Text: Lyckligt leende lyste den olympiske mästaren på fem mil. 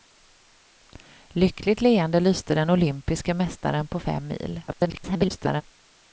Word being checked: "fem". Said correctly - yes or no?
yes